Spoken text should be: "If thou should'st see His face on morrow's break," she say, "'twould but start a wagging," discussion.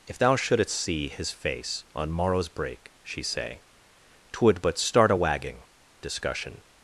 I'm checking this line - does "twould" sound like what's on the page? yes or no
yes